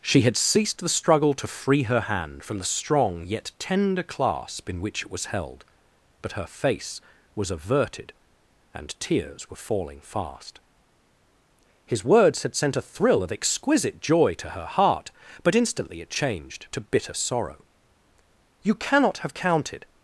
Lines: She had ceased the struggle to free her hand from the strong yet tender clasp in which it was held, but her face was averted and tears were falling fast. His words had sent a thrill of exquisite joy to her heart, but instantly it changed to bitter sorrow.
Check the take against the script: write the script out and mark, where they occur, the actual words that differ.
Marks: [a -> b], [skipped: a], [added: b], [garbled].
She had ceased the struggle to free her hand from the strong yet tender clasp in which it was held, but her face was averted and tears were falling fast. His words had sent a thrill of exquisite joy to her heart, but instantly it changed to bitter sorrow. [added: You cannot have counted]